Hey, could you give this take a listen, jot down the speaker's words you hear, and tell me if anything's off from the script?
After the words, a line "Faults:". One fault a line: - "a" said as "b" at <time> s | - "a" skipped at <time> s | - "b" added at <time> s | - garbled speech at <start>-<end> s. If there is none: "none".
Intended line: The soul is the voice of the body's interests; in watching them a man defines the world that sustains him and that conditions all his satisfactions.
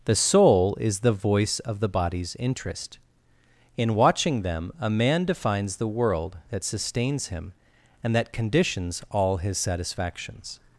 The soul is the voice of the body's interest; in watching them a man defines the world that sustains him and that conditions all his satisfactions.
Faults:
- "interests" said as "interest" at 2.4 s